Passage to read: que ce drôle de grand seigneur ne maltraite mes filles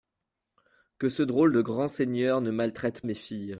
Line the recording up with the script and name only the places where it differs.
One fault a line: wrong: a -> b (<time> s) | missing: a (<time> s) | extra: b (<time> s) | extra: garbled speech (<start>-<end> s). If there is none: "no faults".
no faults